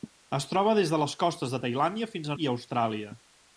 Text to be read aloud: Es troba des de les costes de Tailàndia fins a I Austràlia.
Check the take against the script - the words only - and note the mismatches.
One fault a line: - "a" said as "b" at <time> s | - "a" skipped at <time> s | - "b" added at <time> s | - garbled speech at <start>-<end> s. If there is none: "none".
none